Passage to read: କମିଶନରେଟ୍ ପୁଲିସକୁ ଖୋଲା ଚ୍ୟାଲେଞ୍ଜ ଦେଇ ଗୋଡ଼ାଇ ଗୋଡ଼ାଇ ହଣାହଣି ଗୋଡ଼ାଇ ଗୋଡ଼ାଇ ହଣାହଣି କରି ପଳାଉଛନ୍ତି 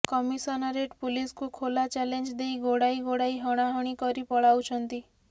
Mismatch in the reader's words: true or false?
true